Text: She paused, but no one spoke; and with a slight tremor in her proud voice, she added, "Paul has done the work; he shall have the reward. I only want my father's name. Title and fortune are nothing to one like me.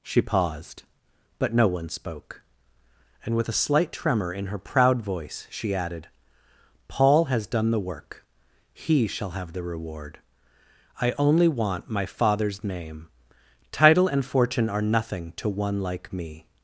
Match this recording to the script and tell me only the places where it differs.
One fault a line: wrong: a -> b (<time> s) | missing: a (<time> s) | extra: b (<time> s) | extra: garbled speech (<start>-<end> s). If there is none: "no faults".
no faults